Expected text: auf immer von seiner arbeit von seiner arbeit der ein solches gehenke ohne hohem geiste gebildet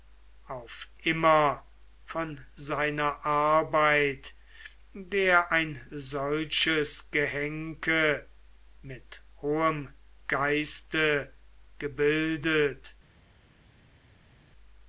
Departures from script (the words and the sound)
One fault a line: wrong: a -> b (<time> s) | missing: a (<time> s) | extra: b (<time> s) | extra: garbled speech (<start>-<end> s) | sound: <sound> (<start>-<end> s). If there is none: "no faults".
missing: von seiner arbeit (4.3 s)
wrong: ohne -> mit (8.8 s)